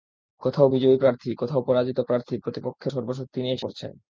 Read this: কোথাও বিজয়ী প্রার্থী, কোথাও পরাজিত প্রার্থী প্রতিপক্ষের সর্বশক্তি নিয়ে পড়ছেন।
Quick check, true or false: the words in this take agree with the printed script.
true